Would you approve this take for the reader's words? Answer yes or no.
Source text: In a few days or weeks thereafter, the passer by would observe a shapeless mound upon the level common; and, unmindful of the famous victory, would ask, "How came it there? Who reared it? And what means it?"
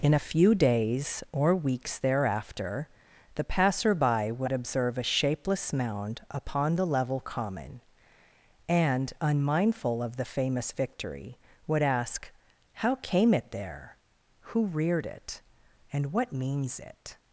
yes